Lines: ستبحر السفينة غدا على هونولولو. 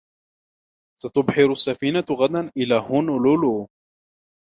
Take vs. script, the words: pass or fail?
fail